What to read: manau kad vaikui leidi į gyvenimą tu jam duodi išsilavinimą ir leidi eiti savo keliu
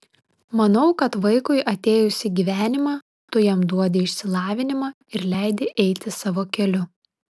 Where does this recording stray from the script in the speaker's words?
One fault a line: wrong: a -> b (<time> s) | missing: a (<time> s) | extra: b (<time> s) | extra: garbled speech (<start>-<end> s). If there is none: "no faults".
wrong: leidi -> atėjus (1.7 s)